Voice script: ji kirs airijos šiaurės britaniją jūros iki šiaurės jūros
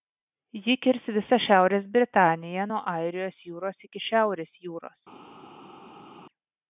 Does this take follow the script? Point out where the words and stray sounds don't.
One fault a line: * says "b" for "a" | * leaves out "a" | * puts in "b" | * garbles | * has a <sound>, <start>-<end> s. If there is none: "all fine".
* says "visą" for "airijos"
* puts in "nuo airijos"